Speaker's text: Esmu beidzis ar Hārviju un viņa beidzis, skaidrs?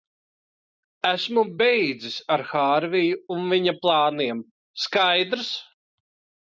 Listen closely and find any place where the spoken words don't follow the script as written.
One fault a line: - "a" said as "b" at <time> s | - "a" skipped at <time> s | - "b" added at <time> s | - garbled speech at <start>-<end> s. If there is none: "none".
- "beidzis" said as "plāniem" at 3.9 s